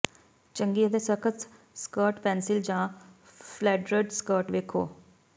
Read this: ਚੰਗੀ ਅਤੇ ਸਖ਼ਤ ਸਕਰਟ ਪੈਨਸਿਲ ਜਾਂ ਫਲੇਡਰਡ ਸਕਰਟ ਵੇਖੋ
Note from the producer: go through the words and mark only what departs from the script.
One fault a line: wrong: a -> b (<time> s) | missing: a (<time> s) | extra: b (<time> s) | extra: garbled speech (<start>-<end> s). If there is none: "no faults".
no faults